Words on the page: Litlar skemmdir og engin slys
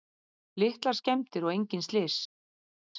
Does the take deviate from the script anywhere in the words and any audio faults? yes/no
no